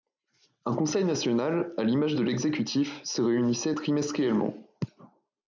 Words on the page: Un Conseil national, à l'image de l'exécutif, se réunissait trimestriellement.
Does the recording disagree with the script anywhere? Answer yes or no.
no